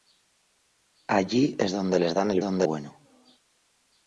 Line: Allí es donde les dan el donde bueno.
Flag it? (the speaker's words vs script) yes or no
no